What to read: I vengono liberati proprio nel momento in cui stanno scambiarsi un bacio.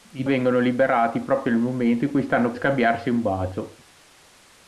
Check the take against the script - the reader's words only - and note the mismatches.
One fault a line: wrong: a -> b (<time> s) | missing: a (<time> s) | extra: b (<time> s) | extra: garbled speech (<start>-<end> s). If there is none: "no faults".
no faults